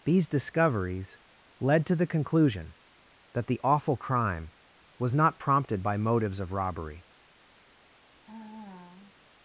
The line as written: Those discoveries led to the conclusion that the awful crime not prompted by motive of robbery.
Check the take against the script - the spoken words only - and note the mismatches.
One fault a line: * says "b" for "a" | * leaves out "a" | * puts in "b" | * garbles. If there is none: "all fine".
* says "These" for "Those"
* puts in "was"
* says "motives" for "motive"